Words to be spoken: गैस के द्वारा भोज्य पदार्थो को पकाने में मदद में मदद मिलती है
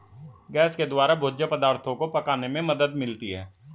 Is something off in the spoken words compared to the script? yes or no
yes